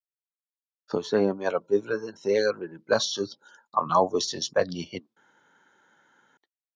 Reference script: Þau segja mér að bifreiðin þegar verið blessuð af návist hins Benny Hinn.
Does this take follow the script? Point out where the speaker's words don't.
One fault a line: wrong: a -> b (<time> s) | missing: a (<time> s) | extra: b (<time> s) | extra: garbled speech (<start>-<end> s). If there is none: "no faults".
no faults